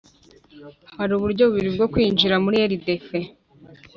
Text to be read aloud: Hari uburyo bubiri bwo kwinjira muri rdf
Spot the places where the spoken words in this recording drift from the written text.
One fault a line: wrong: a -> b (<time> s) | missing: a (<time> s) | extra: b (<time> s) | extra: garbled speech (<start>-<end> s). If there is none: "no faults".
no faults